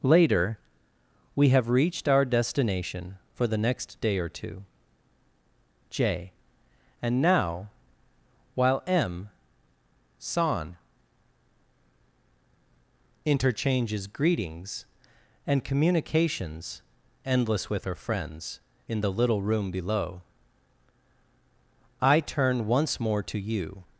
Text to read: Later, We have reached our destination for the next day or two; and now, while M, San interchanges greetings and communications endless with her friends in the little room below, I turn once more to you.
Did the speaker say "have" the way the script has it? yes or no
yes